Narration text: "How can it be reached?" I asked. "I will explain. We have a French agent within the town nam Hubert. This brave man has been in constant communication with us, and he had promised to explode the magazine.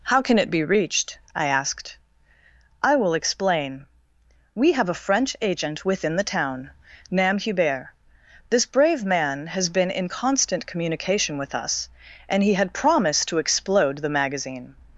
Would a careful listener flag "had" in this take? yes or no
no